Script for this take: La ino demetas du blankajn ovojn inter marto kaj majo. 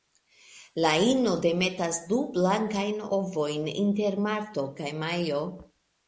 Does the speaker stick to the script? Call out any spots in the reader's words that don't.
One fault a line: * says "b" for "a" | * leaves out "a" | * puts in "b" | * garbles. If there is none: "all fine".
all fine